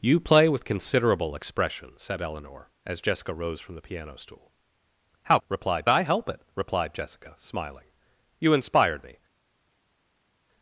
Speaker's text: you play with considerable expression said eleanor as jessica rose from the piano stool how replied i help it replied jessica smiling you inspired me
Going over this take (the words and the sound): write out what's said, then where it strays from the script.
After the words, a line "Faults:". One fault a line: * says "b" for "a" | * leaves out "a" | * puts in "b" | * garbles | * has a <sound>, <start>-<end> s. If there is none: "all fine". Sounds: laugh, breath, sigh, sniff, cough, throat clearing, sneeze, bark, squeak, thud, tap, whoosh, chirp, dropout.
you play with considerable expression said eleanor as jessica rose from the piano stool how replied i help it replied jessica smiling you inspired me
Faults:
all fine